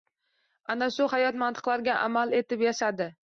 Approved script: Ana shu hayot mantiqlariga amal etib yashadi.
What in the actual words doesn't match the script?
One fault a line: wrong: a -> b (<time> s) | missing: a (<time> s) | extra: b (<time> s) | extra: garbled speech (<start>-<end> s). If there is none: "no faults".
no faults